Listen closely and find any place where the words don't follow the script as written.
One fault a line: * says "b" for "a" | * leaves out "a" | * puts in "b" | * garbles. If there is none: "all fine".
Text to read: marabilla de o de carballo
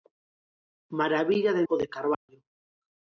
all fine